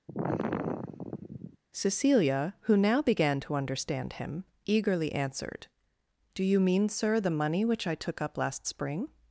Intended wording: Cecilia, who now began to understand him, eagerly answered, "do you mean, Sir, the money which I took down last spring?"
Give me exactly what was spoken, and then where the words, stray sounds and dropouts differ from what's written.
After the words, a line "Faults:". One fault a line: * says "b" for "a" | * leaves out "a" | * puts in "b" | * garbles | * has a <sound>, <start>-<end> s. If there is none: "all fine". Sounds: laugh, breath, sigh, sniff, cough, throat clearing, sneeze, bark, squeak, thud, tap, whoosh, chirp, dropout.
Cecilia, who now began to understand him, eagerly answered, "do you mean, Sir, the money which I took up last spring?"
Faults:
* has a sigh, 0.1-1.6 s
* says "up" for "down"